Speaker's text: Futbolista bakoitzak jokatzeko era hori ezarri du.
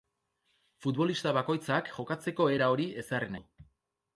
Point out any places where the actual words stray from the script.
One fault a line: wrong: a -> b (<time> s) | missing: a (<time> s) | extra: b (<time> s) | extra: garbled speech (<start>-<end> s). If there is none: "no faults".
no faults